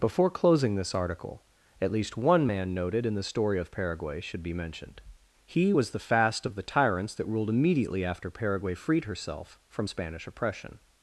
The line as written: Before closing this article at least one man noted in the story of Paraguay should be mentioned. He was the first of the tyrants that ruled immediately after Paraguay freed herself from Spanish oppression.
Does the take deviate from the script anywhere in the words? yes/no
yes